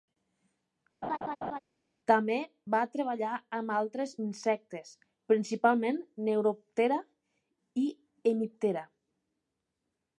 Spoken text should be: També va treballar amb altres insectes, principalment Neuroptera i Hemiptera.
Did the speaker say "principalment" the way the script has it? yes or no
yes